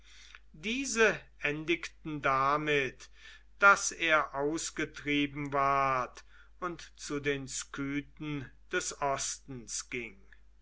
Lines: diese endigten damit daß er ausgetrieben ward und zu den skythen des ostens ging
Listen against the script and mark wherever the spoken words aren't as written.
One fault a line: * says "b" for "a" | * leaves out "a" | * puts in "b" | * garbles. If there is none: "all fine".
all fine